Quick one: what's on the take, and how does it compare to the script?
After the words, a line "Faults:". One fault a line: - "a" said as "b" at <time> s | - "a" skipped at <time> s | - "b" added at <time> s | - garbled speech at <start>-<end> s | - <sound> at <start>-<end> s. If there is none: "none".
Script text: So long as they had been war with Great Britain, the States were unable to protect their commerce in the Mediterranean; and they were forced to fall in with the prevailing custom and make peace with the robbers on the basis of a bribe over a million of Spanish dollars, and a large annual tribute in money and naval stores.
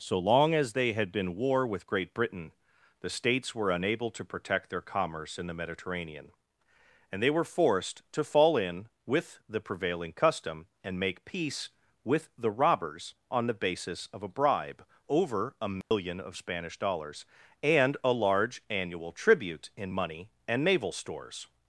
So long as they had been war with Great Britain, the States were unable to protect their commerce in the Mediterranean; and they were forced to fall in with the prevailing custom and make peace with the robbers on the basis of a bribe over a million of Spanish dollars, and a large annual tribute in money and naval stores.
Faults:
- dropout at 15.8-15.9 s